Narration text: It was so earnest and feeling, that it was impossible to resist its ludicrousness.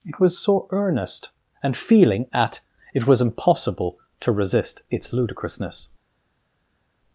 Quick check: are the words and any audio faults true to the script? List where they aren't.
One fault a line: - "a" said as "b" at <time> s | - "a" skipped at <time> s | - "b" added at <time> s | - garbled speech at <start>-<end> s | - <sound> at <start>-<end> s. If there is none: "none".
- "that" said as "at" at 2.3 s